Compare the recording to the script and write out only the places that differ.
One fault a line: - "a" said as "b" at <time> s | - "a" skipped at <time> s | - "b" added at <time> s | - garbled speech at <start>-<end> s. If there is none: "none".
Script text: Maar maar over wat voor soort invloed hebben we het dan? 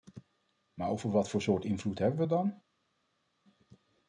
- "maar" skipped at 0.9 s